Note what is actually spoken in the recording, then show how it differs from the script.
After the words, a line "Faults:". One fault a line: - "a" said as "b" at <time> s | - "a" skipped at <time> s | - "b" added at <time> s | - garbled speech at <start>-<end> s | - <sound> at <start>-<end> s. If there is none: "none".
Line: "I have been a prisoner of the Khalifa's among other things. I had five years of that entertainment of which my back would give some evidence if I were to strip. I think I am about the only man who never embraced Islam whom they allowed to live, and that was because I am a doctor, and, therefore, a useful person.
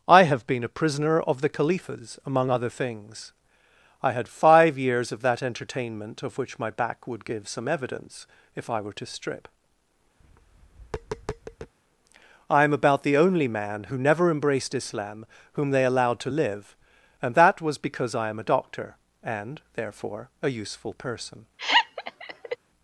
"I have been a prisoner of the Khalifa's among other things. I had five years of that entertainment of which my back would give some evidence if I were to strip. I am about the only man who never embraced Islam whom they allowed to live, and that was because I am a doctor, and, therefore, a useful person.
Faults:
- tap at 10.2-11.7 s
- "think I" skipped at 12.6 s
- laugh at 21.6-22.6 s